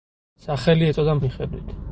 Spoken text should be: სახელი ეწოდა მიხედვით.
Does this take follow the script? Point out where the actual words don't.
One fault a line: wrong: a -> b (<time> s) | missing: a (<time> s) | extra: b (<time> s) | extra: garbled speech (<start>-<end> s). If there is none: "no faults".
no faults